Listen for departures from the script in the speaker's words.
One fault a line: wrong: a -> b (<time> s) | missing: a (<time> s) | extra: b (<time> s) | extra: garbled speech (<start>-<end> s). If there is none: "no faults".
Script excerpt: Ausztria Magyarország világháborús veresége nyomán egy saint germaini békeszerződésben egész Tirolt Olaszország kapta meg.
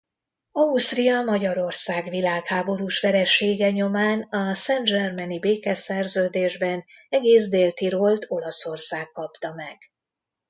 wrong: egy -> a (4.2 s)
extra: Dél (7.5 s)